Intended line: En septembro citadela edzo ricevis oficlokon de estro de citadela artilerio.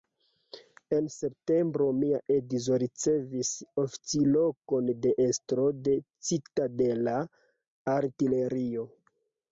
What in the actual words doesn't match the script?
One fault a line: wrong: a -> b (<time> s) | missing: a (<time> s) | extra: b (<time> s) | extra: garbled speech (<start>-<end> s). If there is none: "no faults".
wrong: citadela -> mia (2.0 s)